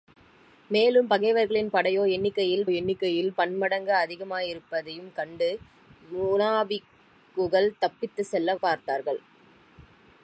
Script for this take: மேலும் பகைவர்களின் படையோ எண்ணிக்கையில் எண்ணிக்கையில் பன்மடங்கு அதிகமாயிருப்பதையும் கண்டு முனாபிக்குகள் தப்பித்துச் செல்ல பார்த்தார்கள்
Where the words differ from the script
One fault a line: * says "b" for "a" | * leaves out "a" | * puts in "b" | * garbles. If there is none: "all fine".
all fine